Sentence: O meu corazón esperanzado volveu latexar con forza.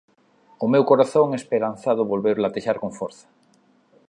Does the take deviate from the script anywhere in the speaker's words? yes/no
no